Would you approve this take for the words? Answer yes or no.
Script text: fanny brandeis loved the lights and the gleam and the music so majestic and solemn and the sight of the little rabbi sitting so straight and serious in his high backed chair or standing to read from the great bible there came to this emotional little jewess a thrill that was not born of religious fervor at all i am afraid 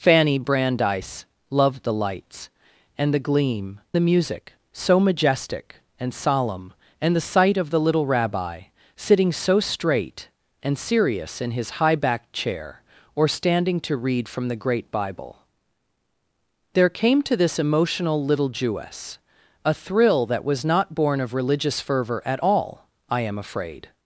no